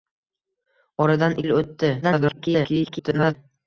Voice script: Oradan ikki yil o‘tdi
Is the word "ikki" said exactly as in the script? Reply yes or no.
no